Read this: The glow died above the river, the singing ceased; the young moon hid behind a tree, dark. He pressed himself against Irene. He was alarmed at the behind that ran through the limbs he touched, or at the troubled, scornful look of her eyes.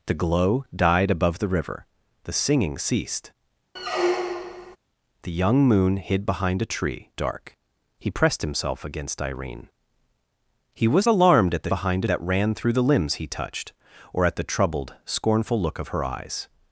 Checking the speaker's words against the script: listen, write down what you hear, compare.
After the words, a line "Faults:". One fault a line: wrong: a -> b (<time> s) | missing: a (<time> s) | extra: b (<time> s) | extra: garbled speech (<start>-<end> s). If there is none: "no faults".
The glow died above the river, the singing ceased; the young moon hid behind a tree, dark. He pressed himself against Irene. He was alarmed at the behind that ran through the limbs he touched, or at the troubled, scornful look of her eyes.
Faults:
no faults